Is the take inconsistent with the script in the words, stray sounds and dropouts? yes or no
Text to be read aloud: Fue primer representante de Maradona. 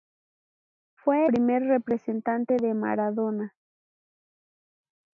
no